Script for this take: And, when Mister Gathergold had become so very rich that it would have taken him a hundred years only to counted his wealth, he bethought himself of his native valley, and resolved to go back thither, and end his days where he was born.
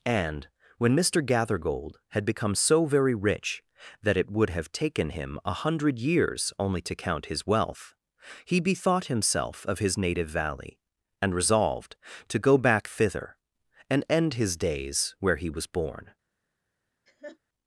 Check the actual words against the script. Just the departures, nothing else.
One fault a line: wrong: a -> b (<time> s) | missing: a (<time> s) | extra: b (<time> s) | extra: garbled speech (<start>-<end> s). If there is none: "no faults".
wrong: counted -> count (7.0 s)